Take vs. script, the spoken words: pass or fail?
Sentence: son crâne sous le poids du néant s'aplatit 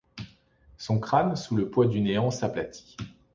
pass